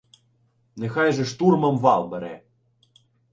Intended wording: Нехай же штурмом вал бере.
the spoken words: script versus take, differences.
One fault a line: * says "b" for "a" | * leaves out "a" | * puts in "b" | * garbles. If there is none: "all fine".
all fine